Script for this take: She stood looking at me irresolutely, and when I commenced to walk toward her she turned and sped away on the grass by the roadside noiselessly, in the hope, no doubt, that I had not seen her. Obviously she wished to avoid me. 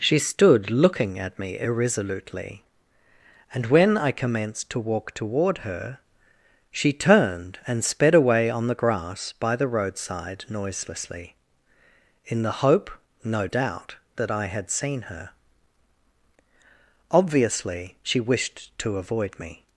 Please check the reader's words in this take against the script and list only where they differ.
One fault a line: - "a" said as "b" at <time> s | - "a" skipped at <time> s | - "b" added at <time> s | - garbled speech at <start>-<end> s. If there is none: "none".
- "not" skipped at 14.7 s